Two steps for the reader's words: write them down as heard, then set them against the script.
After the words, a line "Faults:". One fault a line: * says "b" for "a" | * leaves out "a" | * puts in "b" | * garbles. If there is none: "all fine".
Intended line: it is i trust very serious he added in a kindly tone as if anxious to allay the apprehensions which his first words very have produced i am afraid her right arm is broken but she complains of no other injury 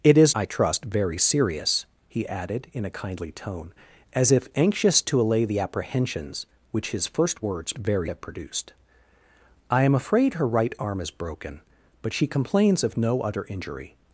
it is i trust very serious he added in a kindly tone as if anxious to allay the apprehensions which his first words very have produced i am afraid her right arm is broken but she complains of no other injury
Faults:
all fine